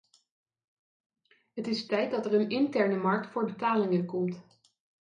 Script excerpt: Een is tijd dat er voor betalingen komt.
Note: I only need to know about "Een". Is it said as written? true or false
false